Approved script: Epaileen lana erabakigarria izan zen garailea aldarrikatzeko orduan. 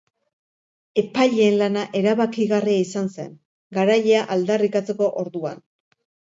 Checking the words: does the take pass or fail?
pass